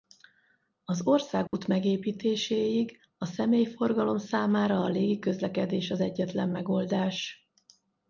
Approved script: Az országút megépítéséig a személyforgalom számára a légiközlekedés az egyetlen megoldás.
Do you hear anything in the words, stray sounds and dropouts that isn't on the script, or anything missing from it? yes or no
yes